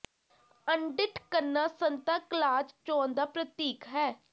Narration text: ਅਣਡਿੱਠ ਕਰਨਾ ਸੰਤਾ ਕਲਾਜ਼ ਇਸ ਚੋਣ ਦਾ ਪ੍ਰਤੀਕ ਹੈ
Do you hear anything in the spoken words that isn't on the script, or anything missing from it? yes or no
yes